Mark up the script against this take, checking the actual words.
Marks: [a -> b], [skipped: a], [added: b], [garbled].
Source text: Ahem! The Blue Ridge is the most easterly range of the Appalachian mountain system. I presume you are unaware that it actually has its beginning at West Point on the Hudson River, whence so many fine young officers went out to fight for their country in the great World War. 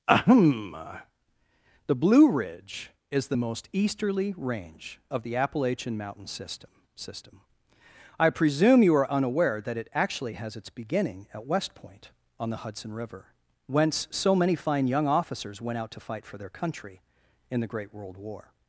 Ahem! The Blue Ridge is the most easterly range of the Appalachian mountain system. [added: system] I presume you are unaware that it actually has its beginning at West Point on the Hudson River, whence so many fine young officers went out to fight for their country in the great World War.